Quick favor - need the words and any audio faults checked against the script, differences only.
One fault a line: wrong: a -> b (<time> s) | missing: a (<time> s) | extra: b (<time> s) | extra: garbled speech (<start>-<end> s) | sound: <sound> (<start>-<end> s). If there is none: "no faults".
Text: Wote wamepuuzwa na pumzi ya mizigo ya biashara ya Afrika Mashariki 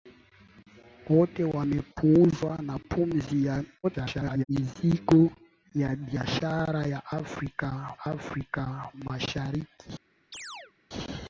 extra: garbled speech (3.8-4.4 s)
extra: Afrika (8.0 s)
sound: chirp (10.3-10.7 s)